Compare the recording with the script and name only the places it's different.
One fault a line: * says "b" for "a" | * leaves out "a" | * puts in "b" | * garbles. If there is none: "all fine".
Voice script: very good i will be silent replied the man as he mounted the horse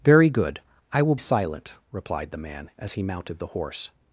* leaves out "be"